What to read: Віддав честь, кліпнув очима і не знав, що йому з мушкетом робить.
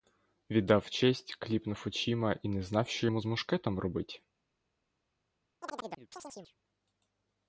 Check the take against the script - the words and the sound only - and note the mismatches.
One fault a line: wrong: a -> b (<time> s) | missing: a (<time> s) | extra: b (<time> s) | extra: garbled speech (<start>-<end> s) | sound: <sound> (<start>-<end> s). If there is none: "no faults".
sound: chirp (5.6-6.6 s)